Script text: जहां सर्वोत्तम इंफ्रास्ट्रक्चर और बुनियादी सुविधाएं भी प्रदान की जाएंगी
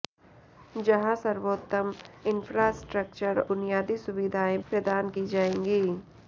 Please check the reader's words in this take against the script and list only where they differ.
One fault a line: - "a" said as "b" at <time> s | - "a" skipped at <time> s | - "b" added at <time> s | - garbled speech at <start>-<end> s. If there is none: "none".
- "और" skipped at 3.4 s
- "भी" skipped at 4.6 s